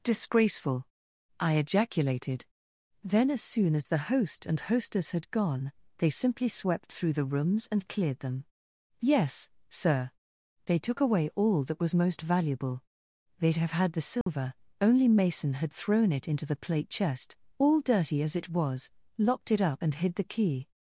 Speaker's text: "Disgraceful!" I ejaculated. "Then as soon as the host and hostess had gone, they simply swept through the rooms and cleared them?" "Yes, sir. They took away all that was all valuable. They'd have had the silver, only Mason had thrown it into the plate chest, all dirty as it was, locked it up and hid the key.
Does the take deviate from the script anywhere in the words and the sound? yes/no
yes